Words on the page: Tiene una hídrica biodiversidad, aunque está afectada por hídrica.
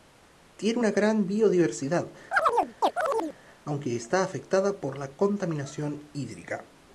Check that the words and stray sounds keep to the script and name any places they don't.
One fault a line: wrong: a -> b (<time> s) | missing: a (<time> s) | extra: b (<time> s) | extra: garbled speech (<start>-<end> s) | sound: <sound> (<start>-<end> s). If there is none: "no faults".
wrong: hídrica -> gran (0.9 s)
sound: chirp (2.3-3.4 s)
extra: la contaminación (5.0 s)